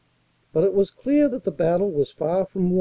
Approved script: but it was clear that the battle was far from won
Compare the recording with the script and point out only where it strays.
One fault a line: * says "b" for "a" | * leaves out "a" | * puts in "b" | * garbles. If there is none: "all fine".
all fine